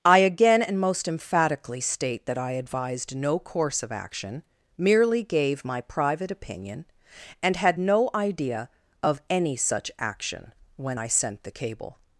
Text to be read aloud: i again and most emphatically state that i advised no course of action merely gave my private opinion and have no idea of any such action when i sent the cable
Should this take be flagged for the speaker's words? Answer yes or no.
yes